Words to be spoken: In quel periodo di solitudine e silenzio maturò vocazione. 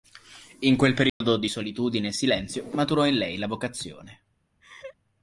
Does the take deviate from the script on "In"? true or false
false